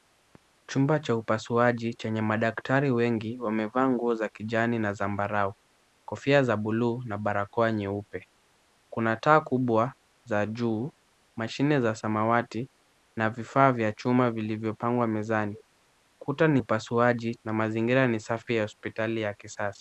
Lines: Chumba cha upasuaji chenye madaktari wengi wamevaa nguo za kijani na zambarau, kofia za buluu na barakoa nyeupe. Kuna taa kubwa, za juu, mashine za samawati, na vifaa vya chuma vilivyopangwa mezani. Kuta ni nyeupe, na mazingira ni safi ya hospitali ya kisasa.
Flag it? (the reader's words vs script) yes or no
yes